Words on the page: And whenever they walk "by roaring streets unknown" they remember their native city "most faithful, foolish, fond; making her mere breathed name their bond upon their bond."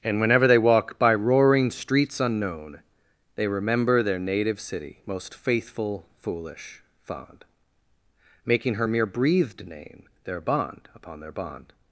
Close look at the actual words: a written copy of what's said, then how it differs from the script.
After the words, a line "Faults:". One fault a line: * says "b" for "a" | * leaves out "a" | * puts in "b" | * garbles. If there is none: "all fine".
And whenever they walk "by roaring streets unknown" they remember their native city "most faithful, foolish, fond; making her mere breathed name their bond upon their bond."
Faults:
all fine